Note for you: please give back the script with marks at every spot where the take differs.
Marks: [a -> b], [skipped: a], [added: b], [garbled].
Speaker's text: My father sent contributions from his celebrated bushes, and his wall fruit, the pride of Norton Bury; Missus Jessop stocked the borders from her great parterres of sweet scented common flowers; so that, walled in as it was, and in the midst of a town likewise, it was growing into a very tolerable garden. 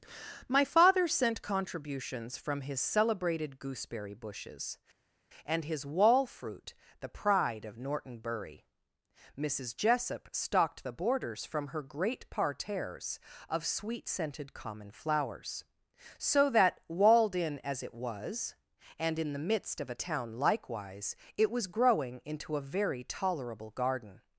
My father sent contributions from his celebrated [added: gooseberry] bushes, and his wall fruit, the pride of Norton Bury; Missus Jessop stocked the borders from her great parterres of sweet scented common flowers; so that, walled in as it was, and in the midst of a town likewise, it was growing into a very tolerable garden.